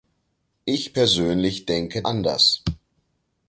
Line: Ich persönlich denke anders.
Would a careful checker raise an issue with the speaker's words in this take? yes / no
no